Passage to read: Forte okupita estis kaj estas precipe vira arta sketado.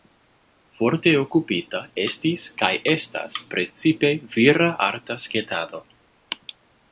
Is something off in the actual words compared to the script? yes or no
no